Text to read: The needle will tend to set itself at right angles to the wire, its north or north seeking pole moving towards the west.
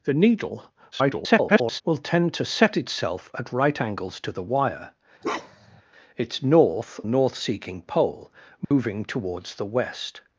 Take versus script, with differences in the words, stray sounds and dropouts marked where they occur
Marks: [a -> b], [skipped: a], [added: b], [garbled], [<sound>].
The needle [garbled] will tend to set itself at right angles to the wire, [bark] its north [skipped: or] north seeking pole moving [dropout] towards the west.